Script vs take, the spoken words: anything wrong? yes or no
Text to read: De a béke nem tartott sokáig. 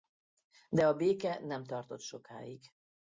no